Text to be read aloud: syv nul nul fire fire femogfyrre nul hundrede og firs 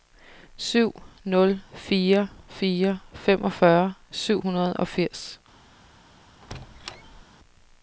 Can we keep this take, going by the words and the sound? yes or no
no